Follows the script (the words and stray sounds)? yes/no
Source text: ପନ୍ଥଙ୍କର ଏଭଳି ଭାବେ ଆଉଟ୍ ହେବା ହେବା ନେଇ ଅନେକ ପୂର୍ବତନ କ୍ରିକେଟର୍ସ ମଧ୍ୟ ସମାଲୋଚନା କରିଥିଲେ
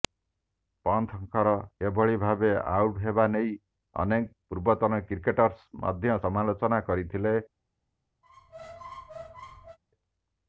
no